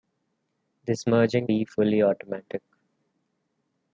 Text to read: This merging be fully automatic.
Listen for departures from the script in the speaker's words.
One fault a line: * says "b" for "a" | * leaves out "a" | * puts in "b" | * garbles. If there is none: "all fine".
all fine